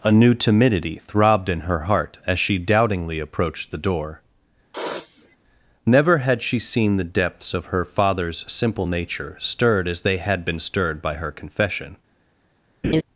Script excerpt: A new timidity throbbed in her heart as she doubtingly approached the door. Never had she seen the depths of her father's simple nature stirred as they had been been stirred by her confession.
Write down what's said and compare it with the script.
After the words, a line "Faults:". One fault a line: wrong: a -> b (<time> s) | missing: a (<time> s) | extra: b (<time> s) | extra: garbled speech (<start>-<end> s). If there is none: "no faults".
A new timidity throbbed in her heart as she doubtingly approached the door. Never had she seen the depths of her father's simple nature stirred as they had been stirred by her confession.
Faults:
missing: been (10.6 s)